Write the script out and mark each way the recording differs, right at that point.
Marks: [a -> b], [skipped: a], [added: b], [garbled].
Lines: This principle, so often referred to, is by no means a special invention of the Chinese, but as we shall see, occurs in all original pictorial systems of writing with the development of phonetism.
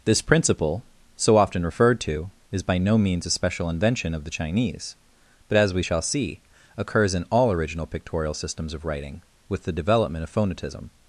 This principle, so often referred to, is by no means a special invention of the Chinese, but as we shall see, occurs in all original pictorial systems of writing with the development of phonetism.